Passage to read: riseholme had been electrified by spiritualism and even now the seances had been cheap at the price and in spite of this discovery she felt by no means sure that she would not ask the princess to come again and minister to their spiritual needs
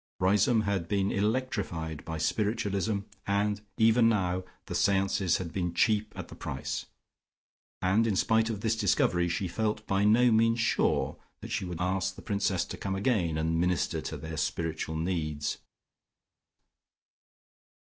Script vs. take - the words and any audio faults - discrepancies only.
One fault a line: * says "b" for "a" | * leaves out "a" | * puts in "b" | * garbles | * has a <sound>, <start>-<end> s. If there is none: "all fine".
* leaves out "not"